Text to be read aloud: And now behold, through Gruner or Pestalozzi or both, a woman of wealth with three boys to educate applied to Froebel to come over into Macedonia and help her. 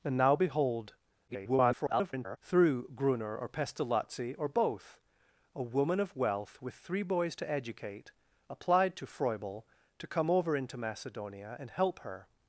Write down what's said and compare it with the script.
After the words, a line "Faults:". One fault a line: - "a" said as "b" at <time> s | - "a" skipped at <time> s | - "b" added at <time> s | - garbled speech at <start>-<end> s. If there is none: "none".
And now behold, [garbled] through Gruner or Pestalozzi or both, a woman of wealth with three boys to educate applied to Froebel to come over into Macedonia and help her.
Faults:
- garbled speech at 1.3-2.4 s